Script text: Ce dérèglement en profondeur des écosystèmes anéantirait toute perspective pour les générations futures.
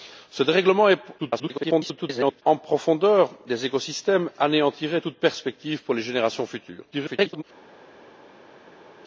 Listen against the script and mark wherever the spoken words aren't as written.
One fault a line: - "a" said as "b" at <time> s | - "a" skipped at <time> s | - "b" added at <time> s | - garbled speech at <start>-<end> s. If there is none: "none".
- garbled speech at 1.2-2.4 s
- garbled speech at 6.9-7.4 s